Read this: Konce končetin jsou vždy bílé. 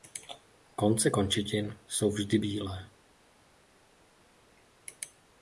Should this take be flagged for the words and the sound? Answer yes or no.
no